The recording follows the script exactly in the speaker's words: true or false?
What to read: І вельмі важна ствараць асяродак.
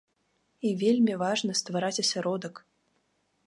true